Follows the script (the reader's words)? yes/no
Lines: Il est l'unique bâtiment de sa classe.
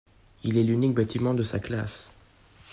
yes